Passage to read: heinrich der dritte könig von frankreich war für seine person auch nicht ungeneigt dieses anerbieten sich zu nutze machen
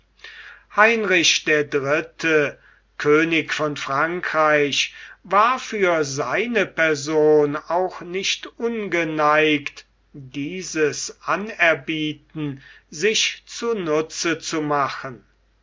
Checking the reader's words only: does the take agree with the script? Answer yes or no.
no